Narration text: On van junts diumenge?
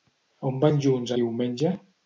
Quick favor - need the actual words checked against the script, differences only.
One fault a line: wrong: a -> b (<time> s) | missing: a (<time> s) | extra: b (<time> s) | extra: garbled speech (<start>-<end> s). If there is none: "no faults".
no faults